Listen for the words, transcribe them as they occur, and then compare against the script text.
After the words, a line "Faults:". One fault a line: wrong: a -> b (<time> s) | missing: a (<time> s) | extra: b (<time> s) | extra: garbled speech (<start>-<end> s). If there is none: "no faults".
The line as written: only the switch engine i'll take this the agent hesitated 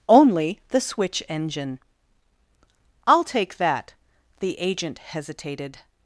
only the switch engine i'll take that the agent hesitated
Faults:
wrong: this -> that (3.6 s)